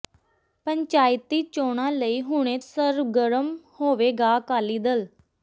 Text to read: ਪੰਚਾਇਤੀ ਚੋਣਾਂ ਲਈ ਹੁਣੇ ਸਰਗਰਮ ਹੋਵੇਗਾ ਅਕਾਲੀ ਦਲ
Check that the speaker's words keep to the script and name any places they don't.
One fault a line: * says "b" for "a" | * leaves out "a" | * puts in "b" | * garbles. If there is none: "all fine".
all fine